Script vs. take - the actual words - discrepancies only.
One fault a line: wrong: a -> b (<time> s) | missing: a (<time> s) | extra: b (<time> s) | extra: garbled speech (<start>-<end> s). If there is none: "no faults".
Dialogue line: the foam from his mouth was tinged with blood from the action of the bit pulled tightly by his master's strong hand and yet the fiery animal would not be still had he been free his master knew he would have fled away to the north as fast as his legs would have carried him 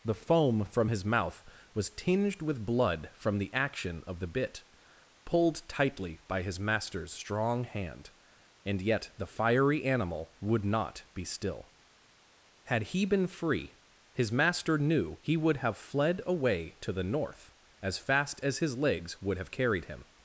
no faults